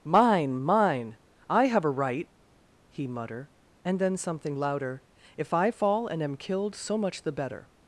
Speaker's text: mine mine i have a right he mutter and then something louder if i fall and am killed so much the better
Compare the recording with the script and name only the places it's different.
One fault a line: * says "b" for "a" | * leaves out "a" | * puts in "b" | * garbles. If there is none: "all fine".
all fine